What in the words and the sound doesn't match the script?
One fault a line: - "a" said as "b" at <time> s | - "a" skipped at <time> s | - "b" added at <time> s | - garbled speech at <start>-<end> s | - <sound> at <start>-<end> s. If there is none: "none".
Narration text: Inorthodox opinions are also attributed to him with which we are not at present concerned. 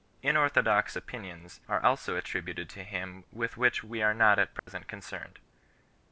- dropout at 4.6-4.7 s